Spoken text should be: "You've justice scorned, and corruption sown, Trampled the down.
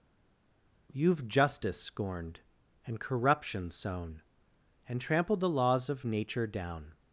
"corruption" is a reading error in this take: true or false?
false